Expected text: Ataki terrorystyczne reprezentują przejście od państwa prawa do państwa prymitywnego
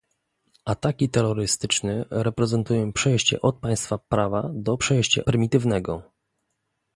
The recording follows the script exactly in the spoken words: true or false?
false